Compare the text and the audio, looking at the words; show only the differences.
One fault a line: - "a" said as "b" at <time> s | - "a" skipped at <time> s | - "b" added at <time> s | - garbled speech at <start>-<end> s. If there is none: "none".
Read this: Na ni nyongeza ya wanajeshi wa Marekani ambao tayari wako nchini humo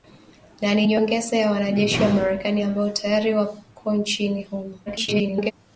- garbled speech at 4.9-5.5 s